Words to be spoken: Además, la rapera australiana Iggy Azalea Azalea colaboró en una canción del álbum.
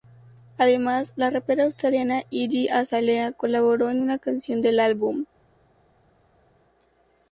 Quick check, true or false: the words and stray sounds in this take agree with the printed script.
false